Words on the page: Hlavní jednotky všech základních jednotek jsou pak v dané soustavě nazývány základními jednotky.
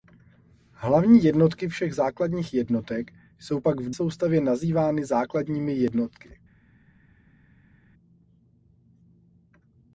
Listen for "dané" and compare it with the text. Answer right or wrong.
wrong